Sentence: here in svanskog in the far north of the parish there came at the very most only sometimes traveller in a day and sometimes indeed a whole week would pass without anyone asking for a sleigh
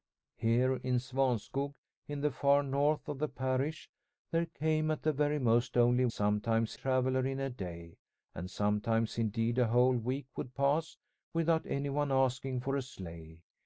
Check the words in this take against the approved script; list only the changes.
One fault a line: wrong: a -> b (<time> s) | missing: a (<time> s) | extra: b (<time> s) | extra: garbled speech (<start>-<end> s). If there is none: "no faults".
no faults